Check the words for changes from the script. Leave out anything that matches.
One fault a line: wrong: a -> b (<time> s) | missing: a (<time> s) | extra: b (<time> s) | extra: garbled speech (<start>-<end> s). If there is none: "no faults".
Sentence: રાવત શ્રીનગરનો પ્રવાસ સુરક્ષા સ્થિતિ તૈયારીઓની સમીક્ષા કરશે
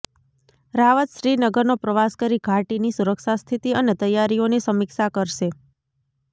extra: કરી ઘાટીની (2.2 s)
extra: અને (3.8 s)